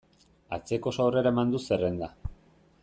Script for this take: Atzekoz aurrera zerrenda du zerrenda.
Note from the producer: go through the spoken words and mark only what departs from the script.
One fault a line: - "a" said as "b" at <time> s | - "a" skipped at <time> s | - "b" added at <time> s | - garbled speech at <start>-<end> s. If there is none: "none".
- "zerrenda" said as "eman" at 1.4 s